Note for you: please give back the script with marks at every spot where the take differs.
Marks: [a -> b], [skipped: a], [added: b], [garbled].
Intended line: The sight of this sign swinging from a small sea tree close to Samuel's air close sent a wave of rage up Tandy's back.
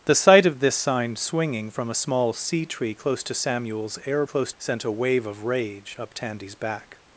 The sight of this sign swinging from a small sea tree close to Samuel's air close sent a wave of rage up Tandy's back.